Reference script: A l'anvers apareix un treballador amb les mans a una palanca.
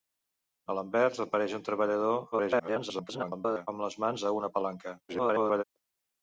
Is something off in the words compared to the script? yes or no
yes